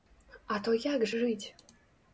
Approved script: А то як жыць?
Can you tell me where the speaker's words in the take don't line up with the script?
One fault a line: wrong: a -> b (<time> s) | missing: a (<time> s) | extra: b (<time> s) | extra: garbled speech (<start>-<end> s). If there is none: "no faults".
no faults